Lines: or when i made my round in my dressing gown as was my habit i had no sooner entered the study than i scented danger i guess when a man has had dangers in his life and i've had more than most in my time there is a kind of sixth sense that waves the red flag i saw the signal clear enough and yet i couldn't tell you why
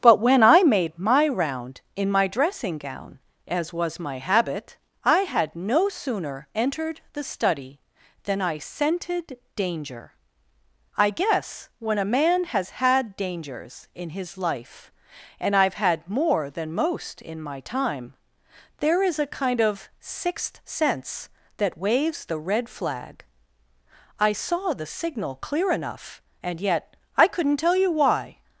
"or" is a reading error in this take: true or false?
true